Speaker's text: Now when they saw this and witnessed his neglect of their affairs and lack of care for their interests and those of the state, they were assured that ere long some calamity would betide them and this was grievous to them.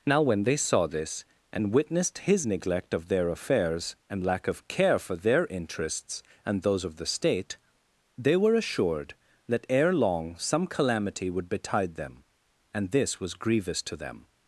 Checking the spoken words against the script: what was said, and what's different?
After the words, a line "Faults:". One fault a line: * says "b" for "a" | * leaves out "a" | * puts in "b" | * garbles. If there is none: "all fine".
Now when they saw this and witnessed his neglect of their affairs and lack of care for their interests and those of the state, they were assured that ere long some calamity would betide them and this was grievous to them.
Faults:
all fine